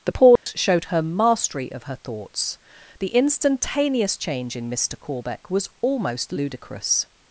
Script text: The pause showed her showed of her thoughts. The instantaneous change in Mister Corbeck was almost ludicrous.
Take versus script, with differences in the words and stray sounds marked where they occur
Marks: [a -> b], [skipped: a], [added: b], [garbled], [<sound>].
The pause [dropout] showed her [showed -> mastery] of her thoughts. The instantaneous change in Mister Corbeck was almost ludicrous.